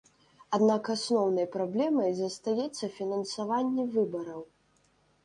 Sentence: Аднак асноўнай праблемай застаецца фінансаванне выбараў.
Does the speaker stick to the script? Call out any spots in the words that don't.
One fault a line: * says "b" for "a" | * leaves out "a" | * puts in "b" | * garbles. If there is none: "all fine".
all fine